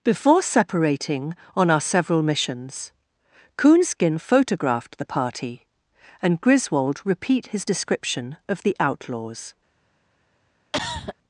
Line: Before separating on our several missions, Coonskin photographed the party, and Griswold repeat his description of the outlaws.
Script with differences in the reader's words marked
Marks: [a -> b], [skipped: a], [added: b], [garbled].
Before separating on our several missions, Coonskin photographed the party, and Griswold repeat his description of the outlaws.